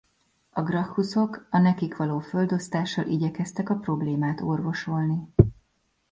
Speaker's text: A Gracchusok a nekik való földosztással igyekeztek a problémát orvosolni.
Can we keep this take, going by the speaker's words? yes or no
yes